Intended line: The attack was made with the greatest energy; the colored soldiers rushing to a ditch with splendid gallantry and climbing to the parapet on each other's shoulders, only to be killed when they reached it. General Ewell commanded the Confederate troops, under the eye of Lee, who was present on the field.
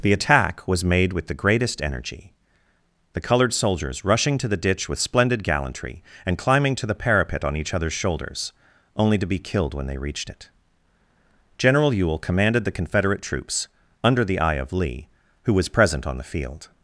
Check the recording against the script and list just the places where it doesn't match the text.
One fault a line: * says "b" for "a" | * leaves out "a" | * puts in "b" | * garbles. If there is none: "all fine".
* says "the" for "a"